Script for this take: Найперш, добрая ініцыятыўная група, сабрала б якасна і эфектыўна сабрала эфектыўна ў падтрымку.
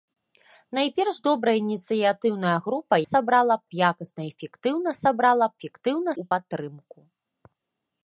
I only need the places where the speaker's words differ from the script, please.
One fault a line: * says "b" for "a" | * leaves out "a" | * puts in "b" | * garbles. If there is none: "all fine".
all fine